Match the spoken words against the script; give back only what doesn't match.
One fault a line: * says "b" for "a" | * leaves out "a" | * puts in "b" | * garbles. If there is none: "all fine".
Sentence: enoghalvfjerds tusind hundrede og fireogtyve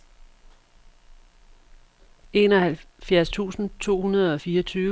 * puts in "to"